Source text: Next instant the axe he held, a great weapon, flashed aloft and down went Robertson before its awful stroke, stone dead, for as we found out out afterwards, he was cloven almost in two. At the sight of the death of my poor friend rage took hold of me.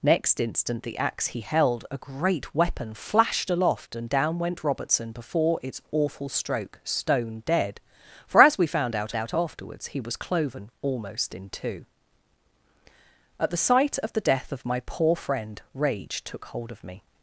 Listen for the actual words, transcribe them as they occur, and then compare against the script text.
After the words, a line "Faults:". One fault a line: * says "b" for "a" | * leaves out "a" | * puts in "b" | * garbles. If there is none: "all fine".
Next instant the axe he held, a great weapon, flashed aloft and down went Robertson before its awful stroke, stone dead, for as we found out out afterwards, he was cloven almost in two. At the sight of the death of my poor friend rage took hold of me.
Faults:
all fine